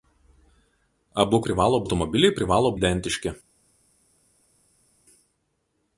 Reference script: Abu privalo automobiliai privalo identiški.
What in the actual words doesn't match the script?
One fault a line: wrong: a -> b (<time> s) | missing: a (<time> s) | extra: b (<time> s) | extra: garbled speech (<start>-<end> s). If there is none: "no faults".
no faults